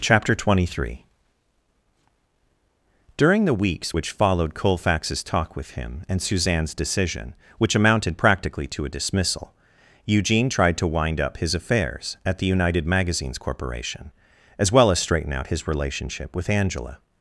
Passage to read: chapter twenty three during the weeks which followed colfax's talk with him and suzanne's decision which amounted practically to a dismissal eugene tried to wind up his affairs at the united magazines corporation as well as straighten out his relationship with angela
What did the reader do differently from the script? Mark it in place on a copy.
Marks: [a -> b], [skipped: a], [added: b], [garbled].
chapter twenty three during the weeks which followed colfax's talk with him and suzanne's decision which amounted practically to a dismissal eugene tried to wind up his affairs at the united magazines corporation as well as straighten out his relationship with angela